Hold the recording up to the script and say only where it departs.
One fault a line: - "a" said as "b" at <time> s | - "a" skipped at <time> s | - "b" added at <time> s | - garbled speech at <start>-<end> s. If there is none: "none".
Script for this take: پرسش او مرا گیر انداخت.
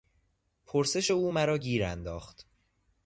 none